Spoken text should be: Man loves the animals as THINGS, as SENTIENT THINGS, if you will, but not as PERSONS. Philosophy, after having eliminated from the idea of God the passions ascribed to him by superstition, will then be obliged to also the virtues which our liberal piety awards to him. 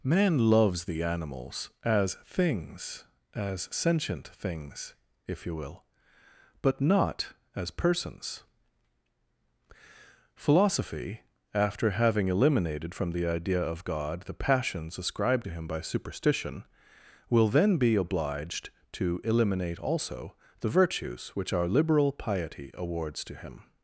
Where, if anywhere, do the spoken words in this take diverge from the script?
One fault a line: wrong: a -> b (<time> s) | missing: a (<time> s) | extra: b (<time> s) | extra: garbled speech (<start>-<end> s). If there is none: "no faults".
extra: eliminate (19.2 s)